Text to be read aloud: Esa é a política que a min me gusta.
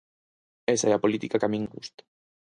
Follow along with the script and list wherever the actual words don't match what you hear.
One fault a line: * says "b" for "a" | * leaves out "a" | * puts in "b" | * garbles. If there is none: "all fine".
all fine